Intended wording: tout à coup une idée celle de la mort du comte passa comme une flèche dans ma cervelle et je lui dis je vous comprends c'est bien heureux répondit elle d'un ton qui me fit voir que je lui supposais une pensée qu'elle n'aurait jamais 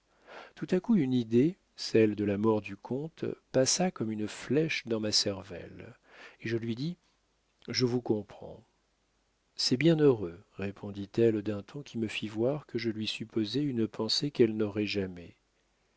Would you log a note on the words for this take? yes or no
no